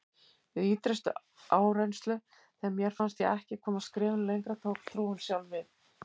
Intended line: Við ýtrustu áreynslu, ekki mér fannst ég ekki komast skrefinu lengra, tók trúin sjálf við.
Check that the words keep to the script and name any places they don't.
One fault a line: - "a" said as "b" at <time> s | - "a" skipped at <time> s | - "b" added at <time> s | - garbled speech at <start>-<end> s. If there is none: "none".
- "ekki" said as "þegar" at 2.6 s